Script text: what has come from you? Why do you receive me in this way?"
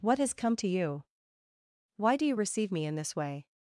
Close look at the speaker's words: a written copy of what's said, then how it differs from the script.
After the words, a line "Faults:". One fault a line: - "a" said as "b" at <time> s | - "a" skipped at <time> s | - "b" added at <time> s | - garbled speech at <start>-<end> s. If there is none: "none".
what has come to you? Why do you receive me in this way?"
Faults:
- "from" said as "to" at 0.6 s